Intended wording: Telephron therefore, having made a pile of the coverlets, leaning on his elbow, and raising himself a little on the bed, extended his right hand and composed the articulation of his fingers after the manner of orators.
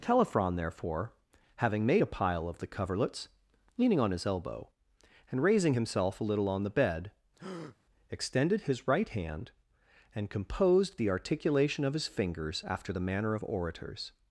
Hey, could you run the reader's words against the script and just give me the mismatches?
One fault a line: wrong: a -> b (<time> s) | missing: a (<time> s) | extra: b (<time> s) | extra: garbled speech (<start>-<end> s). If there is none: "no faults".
no faults